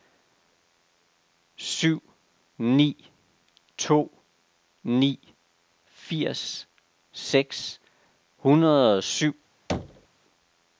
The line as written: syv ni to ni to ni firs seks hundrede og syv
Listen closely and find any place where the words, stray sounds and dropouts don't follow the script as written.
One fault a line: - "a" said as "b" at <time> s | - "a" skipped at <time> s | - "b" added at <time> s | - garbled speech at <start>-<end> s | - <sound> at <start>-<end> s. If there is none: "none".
- "to ni" skipped at 5.2 s
- thud at 9.7-10.1 s